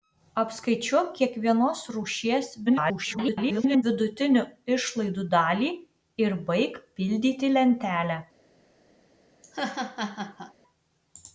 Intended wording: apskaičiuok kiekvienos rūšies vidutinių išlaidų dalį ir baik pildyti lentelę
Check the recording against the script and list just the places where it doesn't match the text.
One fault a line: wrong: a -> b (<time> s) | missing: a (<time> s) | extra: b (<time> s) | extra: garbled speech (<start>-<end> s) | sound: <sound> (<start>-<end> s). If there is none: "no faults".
extra: garbled speech (2.7-3.8 s)
sound: laugh (9.4-10.5 s)